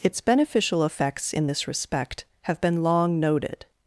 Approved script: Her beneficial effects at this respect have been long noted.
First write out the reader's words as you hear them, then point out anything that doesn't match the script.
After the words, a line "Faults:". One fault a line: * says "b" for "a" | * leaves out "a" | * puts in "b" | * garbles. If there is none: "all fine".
Its beneficial effects in this respect have been long noted.
Faults:
* says "Its" for "Her"
* says "in" for "at"